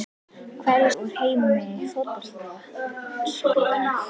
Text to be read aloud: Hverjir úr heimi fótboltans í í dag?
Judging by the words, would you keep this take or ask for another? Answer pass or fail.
pass